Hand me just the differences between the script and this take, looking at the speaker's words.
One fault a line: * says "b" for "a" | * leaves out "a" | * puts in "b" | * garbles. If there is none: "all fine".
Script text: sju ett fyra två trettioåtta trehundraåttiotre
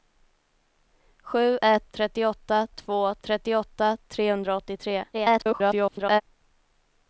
* says "trettioåtta" for "fyra"
* garbles